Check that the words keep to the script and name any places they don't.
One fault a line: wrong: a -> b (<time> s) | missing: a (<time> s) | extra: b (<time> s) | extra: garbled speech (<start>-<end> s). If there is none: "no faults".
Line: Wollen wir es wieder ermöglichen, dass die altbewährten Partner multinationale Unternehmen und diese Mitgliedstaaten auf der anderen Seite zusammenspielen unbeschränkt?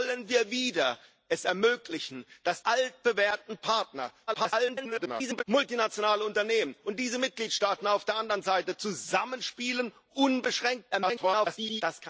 missing: die (2.6 s)
extra: garbled speech (4.3-5.4 s)
extra: garbled speech (10.9-11.8 s)